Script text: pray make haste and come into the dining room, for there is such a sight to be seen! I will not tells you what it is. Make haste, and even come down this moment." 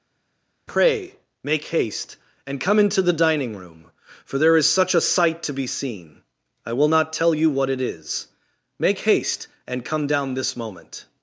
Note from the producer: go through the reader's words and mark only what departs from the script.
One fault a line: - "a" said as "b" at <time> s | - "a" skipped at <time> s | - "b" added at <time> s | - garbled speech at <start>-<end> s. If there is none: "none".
- "tells" said as "tell" at 7.1 s
- "even" skipped at 9.8 s